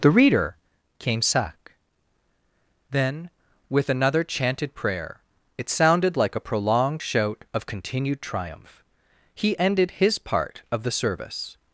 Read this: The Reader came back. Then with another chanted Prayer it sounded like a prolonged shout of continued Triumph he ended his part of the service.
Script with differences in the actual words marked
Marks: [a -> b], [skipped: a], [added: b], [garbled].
The Reader came [back. -> sack] Then with another chanted Prayer it sounded like a prolonged shout of continued Triumph he ended his part of the service.